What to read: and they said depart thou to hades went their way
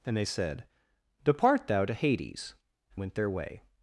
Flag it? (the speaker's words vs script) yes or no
no